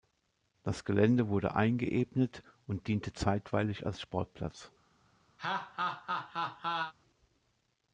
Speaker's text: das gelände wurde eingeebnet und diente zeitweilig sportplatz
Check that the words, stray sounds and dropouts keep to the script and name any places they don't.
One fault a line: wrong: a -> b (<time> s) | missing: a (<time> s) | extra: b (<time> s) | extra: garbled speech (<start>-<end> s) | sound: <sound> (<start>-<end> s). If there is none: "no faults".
extra: als (3.9 s)
sound: laugh (5.4-6.9 s)